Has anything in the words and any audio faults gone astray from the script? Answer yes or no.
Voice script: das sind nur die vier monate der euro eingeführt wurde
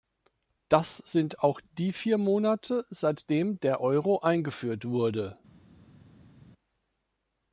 yes